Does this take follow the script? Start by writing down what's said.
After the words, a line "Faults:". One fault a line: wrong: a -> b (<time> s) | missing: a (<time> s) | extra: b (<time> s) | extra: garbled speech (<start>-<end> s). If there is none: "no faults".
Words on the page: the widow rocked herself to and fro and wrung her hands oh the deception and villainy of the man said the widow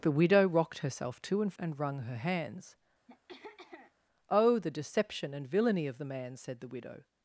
the widow rocked herself to and and wrung her hands oh the deception and villainy of the man said the widow
Faults:
missing: fro (1.5 s)